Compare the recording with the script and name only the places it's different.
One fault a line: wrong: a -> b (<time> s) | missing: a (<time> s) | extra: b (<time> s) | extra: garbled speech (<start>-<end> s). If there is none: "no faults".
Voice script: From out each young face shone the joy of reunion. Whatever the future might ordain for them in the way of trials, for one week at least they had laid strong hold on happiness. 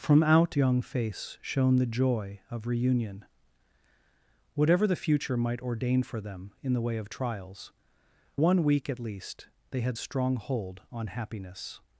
missing: each (0.6 s)
missing: for (7.7 s)
missing: laid (10.0 s)